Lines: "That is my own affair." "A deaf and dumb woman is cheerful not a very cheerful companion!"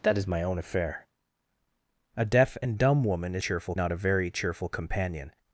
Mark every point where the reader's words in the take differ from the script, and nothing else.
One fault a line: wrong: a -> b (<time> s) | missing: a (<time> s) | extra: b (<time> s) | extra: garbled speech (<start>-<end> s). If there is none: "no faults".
no faults